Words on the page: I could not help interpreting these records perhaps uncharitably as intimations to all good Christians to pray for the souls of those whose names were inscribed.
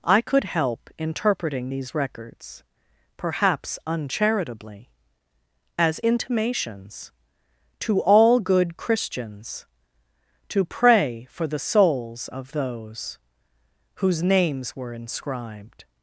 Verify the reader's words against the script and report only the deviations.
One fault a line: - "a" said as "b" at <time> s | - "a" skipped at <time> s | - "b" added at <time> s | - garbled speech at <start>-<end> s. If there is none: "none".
- "not" skipped at 0.5 s